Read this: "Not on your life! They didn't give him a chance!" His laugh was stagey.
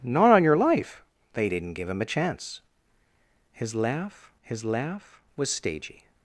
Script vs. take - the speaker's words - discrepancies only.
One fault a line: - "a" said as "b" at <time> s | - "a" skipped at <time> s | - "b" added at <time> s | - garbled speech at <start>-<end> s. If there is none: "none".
- "his laugh" added at 4.4 s